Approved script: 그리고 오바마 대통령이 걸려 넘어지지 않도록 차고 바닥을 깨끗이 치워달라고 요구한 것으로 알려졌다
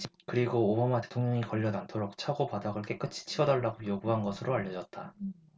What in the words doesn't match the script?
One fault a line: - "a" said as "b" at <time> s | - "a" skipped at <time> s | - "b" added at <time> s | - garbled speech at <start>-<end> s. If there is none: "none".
- "넘어지지" skipped at 1.7 s